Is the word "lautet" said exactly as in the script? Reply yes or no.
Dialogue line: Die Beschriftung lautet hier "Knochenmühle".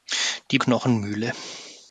no